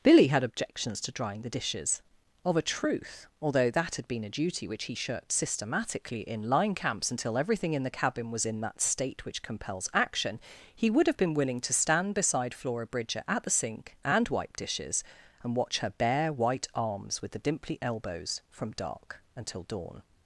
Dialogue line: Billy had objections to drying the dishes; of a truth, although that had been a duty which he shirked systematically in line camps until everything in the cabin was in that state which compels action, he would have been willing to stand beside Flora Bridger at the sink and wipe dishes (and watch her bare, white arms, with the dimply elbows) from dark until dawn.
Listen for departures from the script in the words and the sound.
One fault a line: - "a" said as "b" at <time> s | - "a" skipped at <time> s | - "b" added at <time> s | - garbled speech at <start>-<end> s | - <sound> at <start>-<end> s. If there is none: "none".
none